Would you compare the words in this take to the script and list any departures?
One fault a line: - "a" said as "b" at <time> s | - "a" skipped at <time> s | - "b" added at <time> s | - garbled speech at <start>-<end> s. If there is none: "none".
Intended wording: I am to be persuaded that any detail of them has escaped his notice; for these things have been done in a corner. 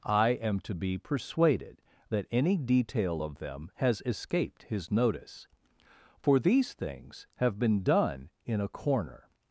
none